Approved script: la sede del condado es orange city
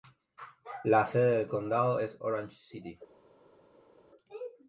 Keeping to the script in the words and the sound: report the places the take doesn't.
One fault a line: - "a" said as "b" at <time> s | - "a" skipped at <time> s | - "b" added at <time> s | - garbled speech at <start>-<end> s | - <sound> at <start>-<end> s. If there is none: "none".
none